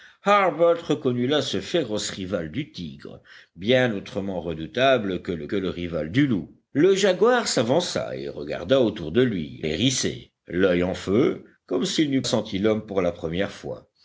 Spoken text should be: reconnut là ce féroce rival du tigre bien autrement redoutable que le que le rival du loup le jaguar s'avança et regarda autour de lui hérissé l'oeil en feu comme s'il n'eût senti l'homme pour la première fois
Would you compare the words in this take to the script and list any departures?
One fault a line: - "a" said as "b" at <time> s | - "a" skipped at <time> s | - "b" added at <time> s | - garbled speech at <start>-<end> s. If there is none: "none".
none